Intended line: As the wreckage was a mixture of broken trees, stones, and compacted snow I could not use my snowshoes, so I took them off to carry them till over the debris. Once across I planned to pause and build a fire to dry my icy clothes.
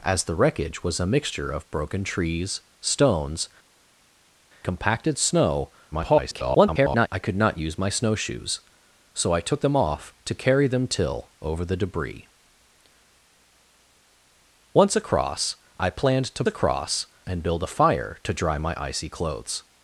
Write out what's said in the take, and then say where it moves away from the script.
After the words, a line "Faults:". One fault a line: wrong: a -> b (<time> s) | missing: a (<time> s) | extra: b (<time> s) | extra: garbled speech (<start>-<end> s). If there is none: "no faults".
As the wreckage was a mixture of broken trees, stones, compacted snow [garbled] I could not use my snowshoes, so I took them off to carry them till over the debris. Once across I planned to across and build a fire to dry my icy clothes.
Faults:
missing: and (3.5 s)
extra: garbled speech (5.9-7.1 s)
wrong: pause -> across (16.5 s)